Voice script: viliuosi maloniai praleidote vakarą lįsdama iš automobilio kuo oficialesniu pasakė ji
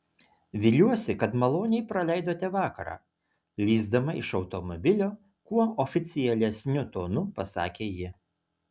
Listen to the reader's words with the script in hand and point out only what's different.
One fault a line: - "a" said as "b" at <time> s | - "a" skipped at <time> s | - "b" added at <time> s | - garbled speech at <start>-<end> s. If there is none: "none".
- "kad" added at 1.2 s
- "tonu" added at 7.0 s